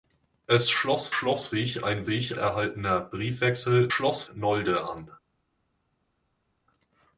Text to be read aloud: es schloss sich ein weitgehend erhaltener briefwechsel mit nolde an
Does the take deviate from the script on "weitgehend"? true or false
true